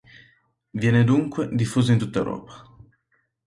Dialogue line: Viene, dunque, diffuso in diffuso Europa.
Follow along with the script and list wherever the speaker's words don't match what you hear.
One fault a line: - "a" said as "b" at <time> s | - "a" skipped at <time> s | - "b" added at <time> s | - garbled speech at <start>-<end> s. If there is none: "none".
- "diffuso" said as "tutta" at 2.0 s